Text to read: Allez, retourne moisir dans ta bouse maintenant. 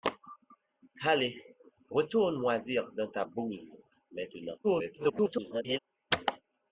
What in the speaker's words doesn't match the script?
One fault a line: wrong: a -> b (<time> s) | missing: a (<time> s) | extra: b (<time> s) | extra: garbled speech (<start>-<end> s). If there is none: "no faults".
extra: garbled speech (4.6-5.8 s)